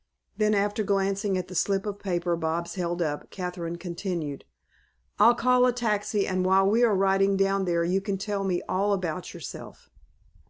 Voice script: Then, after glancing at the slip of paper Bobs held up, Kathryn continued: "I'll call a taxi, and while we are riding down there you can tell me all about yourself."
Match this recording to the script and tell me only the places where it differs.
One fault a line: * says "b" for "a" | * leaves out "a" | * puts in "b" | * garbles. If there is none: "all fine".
all fine